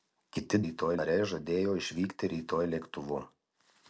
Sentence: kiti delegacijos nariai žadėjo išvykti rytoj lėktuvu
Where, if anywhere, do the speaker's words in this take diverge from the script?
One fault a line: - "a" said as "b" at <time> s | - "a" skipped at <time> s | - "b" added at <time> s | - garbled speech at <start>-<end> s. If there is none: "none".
- "delegacijos" said as "rytoj" at 0.7 s